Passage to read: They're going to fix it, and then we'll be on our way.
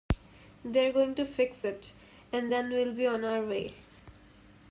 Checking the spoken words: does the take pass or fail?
pass